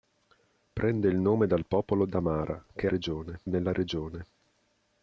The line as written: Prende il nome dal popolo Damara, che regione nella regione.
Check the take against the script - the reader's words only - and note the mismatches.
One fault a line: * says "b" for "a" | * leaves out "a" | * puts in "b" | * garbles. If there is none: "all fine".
all fine